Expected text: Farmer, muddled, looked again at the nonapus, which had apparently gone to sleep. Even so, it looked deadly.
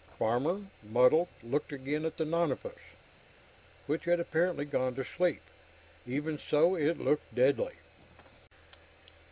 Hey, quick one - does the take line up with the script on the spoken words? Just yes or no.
yes